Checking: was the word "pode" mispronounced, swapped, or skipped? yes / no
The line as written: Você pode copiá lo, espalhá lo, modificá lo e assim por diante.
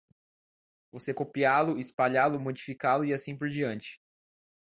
yes